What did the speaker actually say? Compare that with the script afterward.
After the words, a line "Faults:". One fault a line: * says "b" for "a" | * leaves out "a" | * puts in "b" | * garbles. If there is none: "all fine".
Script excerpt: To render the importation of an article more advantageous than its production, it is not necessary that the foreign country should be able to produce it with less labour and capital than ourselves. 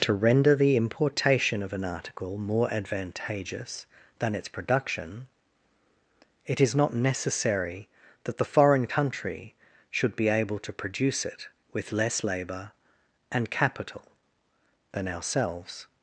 To render the importation of an article more advantageous than its production, it is not necessary that the foreign country should be able to produce it with less labour and capital than ourselves.
Faults:
all fine